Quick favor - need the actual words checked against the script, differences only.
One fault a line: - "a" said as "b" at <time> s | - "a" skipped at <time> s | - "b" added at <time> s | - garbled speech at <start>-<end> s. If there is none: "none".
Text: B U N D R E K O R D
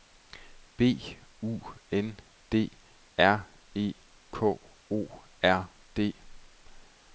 none